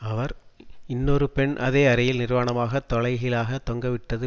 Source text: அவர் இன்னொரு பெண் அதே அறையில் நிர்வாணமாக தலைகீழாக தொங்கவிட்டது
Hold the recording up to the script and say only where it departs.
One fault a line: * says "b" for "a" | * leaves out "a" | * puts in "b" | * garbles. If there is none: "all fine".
all fine